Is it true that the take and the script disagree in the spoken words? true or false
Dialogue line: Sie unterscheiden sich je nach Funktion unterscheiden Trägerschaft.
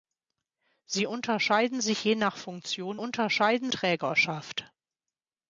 false